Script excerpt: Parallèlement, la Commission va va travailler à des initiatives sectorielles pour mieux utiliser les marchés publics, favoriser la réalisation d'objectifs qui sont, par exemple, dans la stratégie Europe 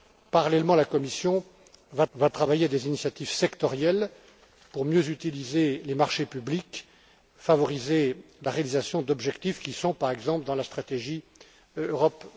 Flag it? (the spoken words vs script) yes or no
no